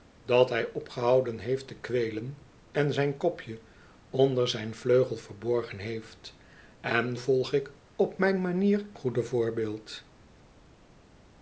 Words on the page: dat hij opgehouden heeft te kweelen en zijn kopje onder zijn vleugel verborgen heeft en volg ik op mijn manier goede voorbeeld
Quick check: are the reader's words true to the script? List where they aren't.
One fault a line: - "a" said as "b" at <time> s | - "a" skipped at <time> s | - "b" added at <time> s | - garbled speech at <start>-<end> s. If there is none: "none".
none